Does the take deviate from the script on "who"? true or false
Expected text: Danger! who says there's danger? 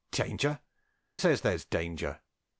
true